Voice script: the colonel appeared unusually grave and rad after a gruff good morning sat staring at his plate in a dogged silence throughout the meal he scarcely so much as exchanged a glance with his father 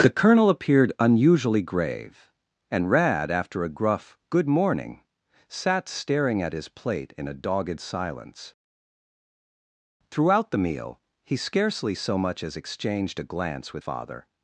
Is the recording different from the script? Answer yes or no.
yes